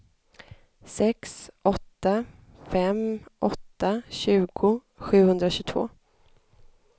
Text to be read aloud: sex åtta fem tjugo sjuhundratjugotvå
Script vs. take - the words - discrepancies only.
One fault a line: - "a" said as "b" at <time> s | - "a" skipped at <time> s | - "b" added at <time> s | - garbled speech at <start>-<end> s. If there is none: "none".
- "åtta" added at 3.4 s